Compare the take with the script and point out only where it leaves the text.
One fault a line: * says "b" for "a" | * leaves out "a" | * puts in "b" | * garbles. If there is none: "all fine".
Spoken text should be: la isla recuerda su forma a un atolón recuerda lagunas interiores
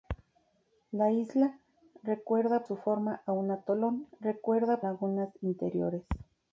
all fine